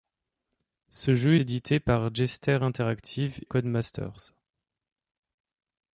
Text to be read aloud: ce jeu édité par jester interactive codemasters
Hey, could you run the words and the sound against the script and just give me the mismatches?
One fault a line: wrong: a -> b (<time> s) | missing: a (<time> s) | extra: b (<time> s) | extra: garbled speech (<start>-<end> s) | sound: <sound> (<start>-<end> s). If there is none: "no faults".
no faults